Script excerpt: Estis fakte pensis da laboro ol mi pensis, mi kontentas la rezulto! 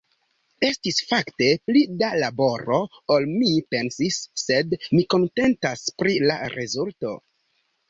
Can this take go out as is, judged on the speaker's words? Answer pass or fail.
fail